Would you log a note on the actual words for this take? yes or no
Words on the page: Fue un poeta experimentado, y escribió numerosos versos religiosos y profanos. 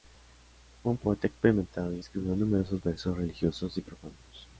no